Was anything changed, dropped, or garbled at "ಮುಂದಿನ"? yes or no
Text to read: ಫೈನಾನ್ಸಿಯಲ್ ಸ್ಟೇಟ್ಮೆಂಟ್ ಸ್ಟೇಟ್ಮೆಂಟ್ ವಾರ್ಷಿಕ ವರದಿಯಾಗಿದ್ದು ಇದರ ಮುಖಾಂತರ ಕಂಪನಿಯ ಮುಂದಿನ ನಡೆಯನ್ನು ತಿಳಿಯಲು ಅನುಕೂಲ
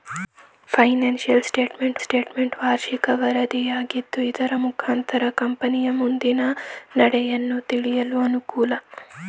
no